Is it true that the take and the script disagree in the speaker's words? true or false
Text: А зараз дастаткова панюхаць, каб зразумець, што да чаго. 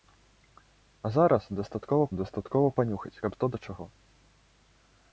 true